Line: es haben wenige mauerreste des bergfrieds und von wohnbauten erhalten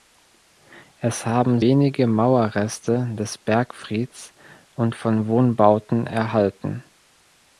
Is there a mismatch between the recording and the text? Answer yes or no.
no